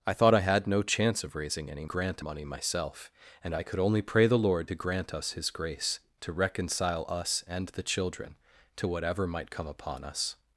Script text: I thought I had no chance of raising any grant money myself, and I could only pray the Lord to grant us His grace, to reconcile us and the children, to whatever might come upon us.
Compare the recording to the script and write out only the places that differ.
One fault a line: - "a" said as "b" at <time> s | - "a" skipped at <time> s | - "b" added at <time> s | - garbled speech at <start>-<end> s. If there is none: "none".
none